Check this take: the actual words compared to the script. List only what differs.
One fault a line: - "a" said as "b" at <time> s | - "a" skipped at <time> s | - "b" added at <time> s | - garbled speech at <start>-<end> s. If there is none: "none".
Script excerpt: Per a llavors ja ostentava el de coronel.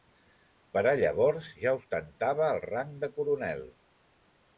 - "rang" added at 2.6 s